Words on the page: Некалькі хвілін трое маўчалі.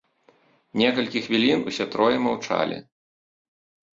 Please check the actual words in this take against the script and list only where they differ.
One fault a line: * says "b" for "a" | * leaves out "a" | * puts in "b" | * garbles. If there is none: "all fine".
* puts in "усе"